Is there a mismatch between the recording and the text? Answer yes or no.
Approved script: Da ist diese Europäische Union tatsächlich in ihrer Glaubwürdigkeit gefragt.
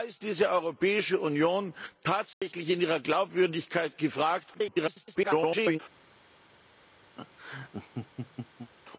yes